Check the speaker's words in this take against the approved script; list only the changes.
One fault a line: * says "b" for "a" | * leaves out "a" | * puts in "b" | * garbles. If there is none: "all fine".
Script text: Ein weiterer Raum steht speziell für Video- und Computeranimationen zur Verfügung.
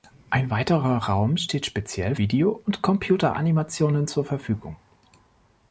* leaves out "für"